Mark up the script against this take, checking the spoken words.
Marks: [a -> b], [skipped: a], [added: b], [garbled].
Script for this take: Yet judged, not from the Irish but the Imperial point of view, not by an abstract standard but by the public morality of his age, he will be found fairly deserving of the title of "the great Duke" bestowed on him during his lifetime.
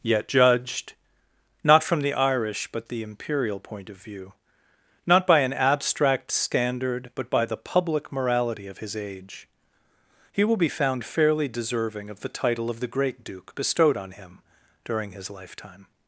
Yet judged, not from the Irish but the Imperial point of view, not by an abstract standard but by the public morality of his age, he will be found fairly deserving of the title of "the great Duke" bestowed on him during his lifetime.